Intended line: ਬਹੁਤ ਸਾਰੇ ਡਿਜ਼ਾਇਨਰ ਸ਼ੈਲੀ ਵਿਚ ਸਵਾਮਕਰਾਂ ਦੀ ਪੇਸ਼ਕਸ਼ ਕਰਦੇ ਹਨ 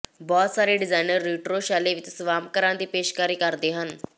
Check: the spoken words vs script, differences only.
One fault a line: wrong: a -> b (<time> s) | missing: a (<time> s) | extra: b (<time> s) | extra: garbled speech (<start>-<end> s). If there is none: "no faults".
extra: ਰਿਟਰੋ (1.2 s)